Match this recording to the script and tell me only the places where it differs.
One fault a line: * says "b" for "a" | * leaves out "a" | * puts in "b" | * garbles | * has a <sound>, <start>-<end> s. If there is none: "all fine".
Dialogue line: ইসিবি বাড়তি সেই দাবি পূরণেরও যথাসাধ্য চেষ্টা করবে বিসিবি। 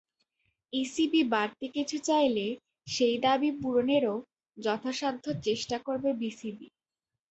* puts in "কিছু চাইলে"